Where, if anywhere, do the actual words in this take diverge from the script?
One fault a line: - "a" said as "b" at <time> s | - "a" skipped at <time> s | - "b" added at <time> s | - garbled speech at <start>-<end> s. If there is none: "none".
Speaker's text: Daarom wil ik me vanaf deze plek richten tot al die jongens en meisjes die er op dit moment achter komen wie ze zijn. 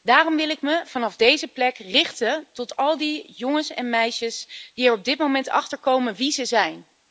none